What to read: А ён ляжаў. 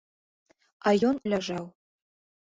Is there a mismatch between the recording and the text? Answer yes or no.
no